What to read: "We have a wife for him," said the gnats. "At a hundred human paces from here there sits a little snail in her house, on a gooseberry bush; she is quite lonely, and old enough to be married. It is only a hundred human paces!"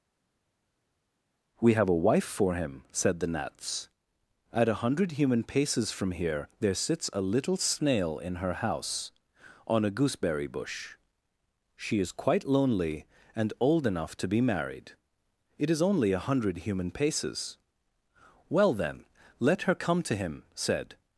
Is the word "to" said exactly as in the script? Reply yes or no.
yes